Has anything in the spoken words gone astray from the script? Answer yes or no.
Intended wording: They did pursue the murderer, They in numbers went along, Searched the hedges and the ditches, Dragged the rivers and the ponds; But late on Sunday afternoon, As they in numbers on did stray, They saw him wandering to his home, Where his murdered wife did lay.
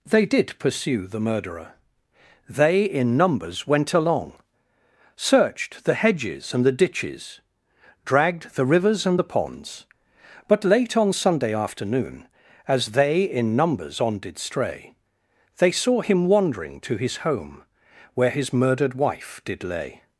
no